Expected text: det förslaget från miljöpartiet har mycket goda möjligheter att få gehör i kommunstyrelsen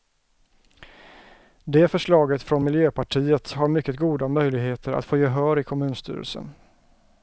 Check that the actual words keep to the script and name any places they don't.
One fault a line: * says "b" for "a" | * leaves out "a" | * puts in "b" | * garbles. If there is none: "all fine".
all fine